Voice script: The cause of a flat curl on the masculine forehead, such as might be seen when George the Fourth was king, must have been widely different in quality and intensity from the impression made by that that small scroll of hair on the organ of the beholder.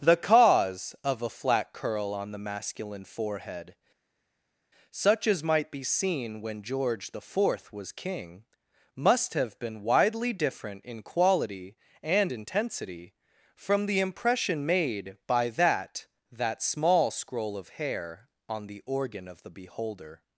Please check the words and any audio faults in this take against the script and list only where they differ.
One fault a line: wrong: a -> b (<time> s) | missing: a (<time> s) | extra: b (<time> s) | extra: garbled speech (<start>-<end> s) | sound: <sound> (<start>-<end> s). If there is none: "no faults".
no faults